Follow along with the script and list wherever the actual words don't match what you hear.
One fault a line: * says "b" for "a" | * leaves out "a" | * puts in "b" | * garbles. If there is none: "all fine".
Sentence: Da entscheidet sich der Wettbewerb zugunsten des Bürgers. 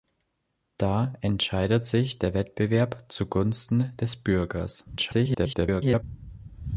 * garbles